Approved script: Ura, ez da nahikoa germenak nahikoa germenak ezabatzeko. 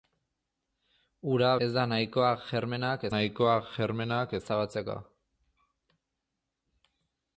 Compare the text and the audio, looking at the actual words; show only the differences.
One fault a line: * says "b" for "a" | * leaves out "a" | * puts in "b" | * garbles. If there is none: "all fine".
all fine